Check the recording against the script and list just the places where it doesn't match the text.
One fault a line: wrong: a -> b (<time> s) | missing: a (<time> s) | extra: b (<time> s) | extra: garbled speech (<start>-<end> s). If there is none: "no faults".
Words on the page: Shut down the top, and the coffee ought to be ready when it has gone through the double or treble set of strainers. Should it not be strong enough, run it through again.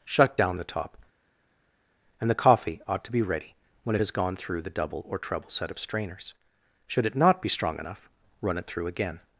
no faults